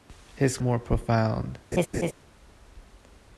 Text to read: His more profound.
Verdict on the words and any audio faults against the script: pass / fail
fail